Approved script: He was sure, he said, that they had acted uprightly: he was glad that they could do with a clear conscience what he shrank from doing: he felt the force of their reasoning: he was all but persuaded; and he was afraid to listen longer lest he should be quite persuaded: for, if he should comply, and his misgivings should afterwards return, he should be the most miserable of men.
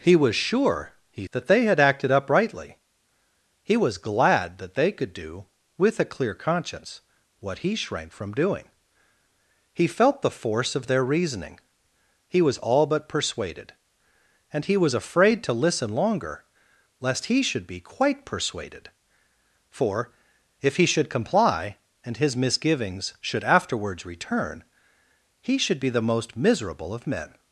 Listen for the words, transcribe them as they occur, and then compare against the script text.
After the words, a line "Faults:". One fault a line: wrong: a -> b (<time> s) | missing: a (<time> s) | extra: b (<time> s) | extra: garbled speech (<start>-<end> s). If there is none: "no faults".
He was sure, he that they had acted uprightly: he was glad that they could do with a clear conscience what he shrank from doing: he felt the force of their reasoning: he was all but persuaded; and he was afraid to listen longer lest he should be quite persuaded: for, if he should comply, and his misgivings should afterwards return, he should be the most miserable of men.
Faults:
missing: said (1.3 s)